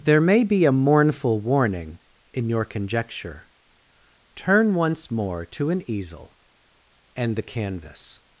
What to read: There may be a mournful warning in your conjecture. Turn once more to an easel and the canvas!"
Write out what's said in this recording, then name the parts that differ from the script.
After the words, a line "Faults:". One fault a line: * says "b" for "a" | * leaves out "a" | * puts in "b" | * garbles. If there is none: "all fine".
There may be a mournful warning in your conjecture. Turn once more to an easel and the canvas!"
Faults:
all fine